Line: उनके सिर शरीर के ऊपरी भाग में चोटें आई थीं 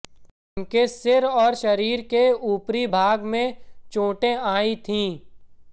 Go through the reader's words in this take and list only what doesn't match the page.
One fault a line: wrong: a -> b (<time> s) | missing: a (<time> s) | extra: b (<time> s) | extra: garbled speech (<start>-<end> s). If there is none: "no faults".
extra: और (1.2 s)